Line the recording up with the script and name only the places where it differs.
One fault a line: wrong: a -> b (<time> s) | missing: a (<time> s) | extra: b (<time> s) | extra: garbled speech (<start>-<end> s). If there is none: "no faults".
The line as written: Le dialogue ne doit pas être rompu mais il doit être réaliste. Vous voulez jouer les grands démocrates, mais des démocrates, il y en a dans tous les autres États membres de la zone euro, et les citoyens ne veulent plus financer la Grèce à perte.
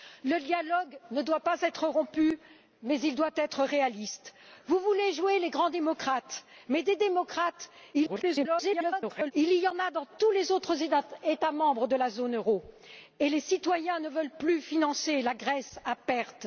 extra: garbled speech (7.9-9.3 s)